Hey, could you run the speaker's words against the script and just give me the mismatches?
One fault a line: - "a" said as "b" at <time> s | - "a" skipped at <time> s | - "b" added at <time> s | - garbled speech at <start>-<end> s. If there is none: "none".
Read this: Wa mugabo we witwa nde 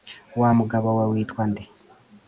none